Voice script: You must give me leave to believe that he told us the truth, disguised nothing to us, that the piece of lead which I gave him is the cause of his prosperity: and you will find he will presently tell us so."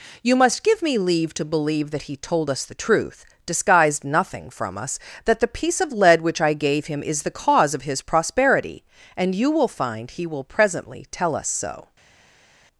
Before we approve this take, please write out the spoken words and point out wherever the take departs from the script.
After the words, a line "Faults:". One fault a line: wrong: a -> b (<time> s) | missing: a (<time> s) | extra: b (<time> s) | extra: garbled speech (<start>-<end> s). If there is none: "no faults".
You must give me leave to believe that he told us the truth, disguised nothing from us, that the piece of lead which I gave him is the cause of his prosperity: and you will find he will presently tell us so."
Faults:
wrong: to -> from (4.5 s)